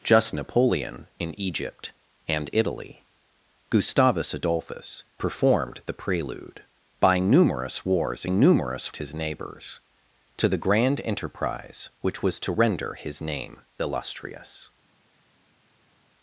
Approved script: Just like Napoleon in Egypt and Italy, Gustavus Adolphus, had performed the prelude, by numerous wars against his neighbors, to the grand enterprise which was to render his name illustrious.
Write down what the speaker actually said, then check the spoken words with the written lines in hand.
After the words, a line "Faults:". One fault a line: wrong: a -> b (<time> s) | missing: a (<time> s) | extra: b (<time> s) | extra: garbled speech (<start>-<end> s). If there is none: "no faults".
Just Napoleon in Egypt and Italy, Gustavus Adolphus, performed the prelude, by numerous wars numerous his neighbors, to the grand enterprise which was to render his name illustrious.
Faults:
missing: like (0.3 s)
missing: had (5.0 s)
wrong: against -> numerous (8.3 s)